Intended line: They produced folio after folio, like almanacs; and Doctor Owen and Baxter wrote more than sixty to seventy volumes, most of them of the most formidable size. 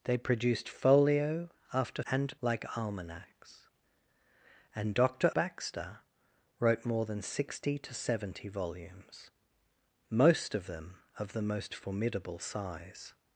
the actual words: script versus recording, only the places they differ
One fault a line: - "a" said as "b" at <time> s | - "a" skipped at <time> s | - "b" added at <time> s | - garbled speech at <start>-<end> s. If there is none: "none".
- "folio" said as "and" at 2.1 s
- "Owen and" skipped at 5.3 s